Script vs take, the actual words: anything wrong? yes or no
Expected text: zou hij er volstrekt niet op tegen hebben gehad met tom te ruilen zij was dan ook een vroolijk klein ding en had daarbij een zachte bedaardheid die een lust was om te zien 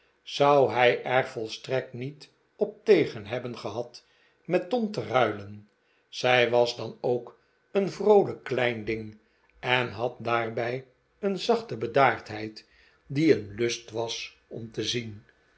no